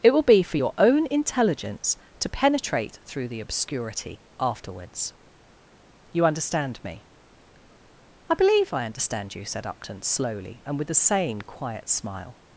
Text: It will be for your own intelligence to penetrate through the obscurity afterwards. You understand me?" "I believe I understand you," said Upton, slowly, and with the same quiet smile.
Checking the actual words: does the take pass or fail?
pass